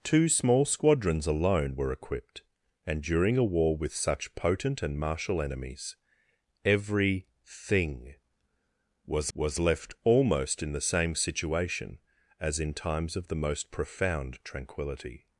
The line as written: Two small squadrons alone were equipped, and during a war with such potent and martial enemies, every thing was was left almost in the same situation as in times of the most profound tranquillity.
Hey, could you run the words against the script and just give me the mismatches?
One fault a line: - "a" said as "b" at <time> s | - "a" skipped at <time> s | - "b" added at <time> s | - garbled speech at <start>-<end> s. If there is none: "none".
none